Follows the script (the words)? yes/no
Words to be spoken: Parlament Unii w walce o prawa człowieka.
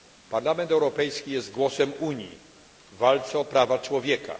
no